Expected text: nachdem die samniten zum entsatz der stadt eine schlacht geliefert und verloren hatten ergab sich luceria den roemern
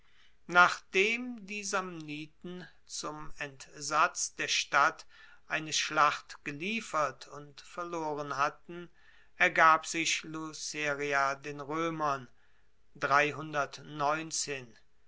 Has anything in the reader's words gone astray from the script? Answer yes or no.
no